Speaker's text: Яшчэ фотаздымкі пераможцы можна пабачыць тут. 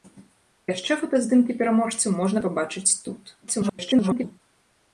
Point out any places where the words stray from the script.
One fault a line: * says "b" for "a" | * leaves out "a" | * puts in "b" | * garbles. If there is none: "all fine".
* garbles